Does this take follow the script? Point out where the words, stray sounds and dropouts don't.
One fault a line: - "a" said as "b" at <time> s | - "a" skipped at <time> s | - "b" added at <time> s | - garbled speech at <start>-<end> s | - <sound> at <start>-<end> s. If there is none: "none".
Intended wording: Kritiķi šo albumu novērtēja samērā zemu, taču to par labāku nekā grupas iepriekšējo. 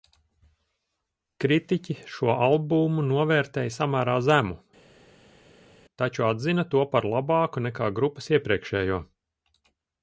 - "atzina" added at 6.3 s